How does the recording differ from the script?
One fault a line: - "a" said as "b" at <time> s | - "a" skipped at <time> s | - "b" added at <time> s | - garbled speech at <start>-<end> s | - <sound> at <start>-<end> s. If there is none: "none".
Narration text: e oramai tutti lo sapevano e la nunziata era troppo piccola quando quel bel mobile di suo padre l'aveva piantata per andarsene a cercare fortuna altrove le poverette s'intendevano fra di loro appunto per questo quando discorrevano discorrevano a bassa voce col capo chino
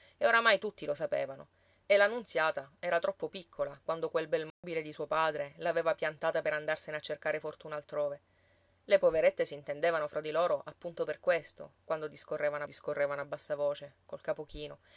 - dropout at 4.5-4.6 s